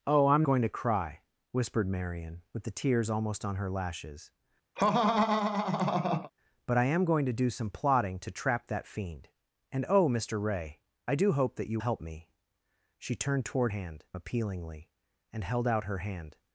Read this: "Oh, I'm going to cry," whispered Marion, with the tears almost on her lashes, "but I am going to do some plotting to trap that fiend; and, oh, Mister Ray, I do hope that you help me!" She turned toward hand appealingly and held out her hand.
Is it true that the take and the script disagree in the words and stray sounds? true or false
true